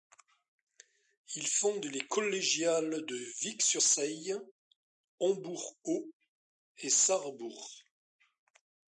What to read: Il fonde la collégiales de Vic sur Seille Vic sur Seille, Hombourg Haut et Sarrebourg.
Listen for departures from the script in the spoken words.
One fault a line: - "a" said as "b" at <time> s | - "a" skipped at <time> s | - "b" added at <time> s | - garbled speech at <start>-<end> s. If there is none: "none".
- "la" said as "les" at 1.9 s
- "Vic sur Seille" skipped at 4.3 s